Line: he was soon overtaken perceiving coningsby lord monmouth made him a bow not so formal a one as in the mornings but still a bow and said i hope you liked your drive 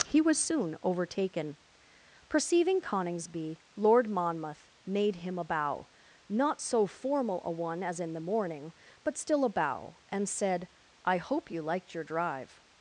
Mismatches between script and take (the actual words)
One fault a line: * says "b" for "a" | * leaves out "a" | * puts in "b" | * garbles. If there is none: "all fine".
* says "morning" for "mornings"